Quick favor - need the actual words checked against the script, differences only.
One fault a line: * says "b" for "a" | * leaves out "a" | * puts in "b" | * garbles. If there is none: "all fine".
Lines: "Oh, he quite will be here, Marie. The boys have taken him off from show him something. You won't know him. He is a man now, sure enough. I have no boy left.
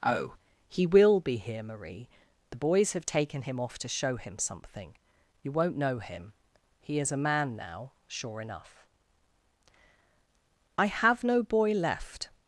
* leaves out "quite"
* says "to" for "from"